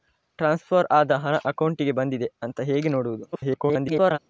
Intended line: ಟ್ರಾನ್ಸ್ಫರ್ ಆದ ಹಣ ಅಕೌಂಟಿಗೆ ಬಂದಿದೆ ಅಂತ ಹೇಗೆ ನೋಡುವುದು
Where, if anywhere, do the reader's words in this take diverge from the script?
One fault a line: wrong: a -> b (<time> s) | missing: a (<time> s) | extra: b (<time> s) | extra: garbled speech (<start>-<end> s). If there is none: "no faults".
extra: garbled speech (3.3-4.2 s)